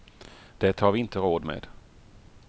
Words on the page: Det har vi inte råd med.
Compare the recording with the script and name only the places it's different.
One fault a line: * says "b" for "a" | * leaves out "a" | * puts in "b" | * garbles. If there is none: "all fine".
all fine